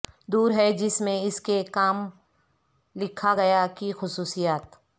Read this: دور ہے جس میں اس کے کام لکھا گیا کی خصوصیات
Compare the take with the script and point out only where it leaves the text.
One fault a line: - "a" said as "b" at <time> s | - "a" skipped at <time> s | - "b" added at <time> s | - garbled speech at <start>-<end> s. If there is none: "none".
none